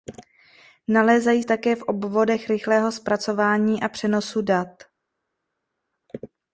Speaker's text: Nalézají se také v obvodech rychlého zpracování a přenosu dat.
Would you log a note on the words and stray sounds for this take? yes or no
yes